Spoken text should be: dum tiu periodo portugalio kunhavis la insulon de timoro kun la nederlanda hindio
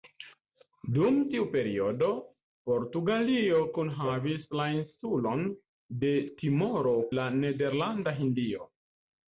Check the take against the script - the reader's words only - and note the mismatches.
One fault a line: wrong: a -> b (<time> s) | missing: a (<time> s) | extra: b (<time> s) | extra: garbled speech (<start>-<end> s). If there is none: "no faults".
missing: kun (7.0 s)